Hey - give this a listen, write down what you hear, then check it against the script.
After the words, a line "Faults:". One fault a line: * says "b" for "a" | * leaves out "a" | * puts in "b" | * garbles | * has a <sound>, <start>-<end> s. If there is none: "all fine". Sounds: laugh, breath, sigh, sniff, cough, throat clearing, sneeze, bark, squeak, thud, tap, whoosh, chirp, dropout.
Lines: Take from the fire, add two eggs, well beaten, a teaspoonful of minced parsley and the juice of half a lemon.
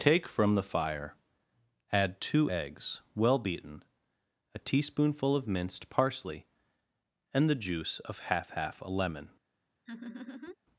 Take from the fire, add two eggs, well beaten, a teaspoonful of minced parsley and the juice of half half a lemon.
Faults:
* puts in "half"
* has a laugh, 9.9-10.6 s